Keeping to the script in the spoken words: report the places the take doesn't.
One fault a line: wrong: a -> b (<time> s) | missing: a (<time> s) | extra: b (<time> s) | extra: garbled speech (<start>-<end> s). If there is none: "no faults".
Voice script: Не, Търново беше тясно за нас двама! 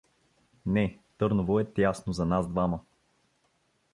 wrong: беше -> е (1.6 s)